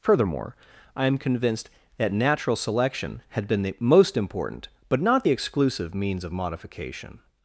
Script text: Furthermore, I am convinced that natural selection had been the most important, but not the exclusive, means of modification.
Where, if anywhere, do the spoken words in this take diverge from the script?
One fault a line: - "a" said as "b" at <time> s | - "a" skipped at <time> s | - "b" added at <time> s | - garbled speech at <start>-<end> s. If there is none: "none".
none